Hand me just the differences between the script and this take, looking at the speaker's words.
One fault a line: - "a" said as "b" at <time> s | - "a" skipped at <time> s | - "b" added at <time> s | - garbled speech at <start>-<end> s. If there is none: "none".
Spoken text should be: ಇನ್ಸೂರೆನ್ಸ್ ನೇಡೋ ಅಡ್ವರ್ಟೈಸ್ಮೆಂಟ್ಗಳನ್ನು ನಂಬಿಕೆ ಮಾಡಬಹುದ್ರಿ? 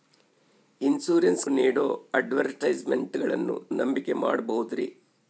none